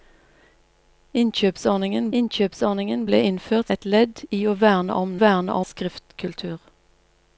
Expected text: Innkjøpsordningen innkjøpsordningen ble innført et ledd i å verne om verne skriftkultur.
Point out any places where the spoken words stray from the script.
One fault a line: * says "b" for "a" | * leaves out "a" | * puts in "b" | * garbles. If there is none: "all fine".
all fine